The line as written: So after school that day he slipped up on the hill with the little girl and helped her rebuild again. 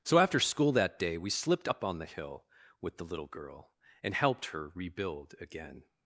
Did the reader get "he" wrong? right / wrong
wrong